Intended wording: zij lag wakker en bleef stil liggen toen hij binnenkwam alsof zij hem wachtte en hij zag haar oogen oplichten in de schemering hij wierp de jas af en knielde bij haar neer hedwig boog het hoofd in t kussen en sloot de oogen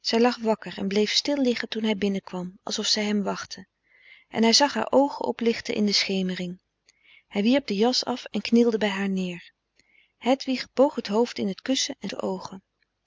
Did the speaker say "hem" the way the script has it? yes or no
yes